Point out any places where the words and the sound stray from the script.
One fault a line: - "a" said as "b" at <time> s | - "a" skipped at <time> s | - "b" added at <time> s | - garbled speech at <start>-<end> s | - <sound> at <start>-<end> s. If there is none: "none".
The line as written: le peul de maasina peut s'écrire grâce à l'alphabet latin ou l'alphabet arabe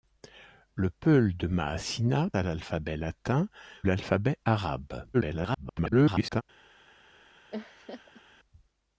- "peut s'écrire grâce" skipped at 2.3 s
- "ou" skipped at 3.5 s
- garbled speech at 5.1-6.4 s
- laugh at 7.5-8.2 s